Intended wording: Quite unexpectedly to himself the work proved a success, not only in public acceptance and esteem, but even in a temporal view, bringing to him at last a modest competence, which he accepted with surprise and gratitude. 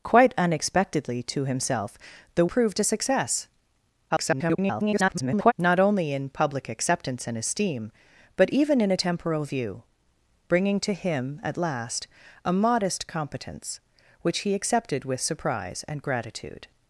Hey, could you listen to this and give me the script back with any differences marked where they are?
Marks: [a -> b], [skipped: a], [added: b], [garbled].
Quite unexpectedly to himself the [skipped: work] proved a success, [garbled] not only in public acceptance and esteem, but even in a temporal view, bringing to him at last a modest competence, which he accepted with surprise and gratitude.